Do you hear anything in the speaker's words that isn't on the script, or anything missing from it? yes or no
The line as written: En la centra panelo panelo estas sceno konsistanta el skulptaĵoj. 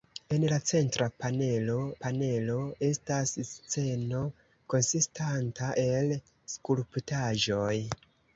no